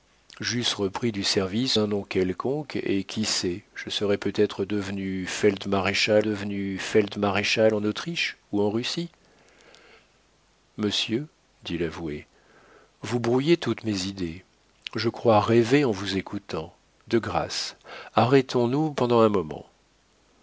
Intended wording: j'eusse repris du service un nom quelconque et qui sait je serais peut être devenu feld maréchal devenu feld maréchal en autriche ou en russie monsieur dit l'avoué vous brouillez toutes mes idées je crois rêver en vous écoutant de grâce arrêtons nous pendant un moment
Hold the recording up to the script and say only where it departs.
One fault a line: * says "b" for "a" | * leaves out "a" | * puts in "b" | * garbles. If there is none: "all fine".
all fine